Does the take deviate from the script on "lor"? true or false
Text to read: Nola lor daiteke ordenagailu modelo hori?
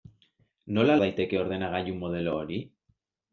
true